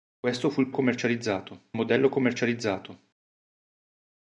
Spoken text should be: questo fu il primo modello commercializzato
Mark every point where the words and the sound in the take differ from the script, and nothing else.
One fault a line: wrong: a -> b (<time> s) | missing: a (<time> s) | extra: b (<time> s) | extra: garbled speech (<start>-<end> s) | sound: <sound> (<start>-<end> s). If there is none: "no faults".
wrong: primo -> commercializzato (0.7 s)